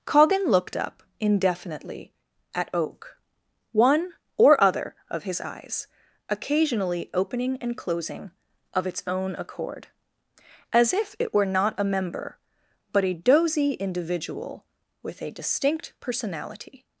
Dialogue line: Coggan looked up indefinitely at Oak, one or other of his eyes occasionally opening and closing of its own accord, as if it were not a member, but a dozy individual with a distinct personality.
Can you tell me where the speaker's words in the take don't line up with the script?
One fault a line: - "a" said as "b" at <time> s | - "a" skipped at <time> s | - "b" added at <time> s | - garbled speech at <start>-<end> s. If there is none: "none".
none